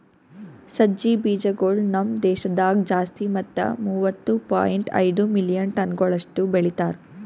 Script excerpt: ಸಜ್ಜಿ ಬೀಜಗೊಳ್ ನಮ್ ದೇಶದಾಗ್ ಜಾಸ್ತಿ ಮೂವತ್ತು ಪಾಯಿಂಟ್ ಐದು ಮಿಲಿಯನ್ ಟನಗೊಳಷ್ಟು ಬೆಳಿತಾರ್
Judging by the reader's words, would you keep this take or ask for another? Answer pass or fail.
fail